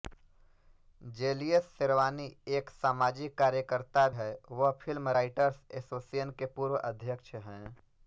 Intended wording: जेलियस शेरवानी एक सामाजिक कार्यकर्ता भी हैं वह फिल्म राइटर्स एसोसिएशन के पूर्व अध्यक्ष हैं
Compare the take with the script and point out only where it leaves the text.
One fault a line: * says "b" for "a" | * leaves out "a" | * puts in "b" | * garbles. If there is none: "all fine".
* leaves out "भी"